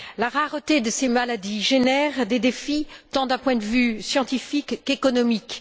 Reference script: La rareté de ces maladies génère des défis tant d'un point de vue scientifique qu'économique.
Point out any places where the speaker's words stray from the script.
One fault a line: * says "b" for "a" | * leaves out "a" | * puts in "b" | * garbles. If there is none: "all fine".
all fine